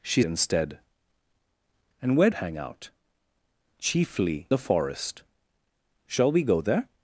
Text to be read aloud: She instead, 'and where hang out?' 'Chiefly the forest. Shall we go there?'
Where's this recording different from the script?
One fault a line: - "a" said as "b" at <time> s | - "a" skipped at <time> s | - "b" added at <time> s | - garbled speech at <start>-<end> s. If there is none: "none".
none